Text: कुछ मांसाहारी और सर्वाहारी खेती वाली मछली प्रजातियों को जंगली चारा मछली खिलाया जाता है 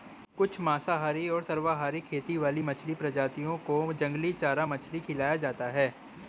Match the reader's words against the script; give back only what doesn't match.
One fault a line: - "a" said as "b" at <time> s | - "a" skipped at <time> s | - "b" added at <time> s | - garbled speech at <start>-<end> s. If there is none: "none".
none